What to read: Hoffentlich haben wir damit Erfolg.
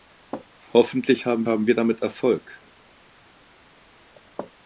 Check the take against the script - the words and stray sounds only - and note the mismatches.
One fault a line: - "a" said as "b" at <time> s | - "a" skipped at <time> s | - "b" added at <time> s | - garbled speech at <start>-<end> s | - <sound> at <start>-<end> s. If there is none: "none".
- "haben" added at 1.5 s